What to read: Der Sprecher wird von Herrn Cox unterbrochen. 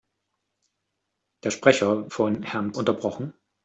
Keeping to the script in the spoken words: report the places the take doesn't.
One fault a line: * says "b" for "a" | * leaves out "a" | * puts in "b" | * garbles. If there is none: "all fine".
* leaves out "wird"
* leaves out "Cox"